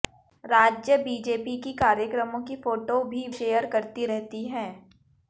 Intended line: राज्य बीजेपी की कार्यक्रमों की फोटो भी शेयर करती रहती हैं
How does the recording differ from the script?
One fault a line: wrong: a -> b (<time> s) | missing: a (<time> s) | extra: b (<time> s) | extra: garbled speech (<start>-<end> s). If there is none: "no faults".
no faults